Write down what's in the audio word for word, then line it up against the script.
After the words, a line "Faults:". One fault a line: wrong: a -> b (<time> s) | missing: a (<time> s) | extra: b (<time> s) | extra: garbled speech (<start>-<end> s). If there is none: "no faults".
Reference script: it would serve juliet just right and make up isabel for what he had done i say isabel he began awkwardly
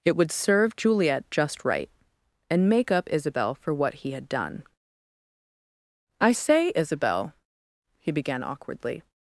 it would serve juliet just right and make up isabel for what he had done i say isabel he began awkwardly
Faults:
no faults